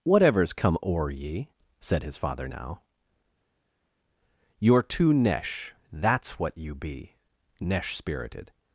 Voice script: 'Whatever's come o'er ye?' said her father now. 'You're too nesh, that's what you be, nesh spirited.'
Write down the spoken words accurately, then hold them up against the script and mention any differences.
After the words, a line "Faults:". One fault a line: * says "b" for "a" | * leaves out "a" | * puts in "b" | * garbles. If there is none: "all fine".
'Whatever's come o'er ye?' said his father now. 'You're too nesh, that's what you be, nesh spirited.'
Faults:
* says "his" for "her"